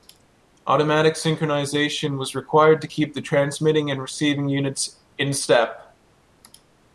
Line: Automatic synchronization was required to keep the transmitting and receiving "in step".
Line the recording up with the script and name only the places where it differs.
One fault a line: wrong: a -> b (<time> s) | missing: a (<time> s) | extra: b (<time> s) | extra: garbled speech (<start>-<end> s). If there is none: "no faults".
extra: units (4.5 s)